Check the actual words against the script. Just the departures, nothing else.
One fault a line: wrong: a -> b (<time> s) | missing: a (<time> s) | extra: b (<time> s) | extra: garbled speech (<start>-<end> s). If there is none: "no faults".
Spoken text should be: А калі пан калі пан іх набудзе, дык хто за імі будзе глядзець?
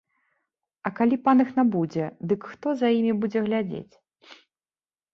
missing: калі пан (1.4 s)